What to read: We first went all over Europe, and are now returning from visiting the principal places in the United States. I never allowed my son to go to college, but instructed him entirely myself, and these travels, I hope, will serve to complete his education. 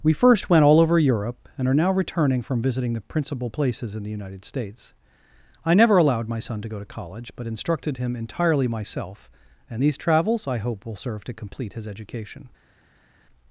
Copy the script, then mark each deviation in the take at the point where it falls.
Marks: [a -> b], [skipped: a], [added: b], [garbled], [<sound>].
We first went all over Europe, and are now returning from visiting the principal places in the United States. I never allowed my son to go to college, but instructed him entirely myself, and these travels, I hope, will serve to complete his education.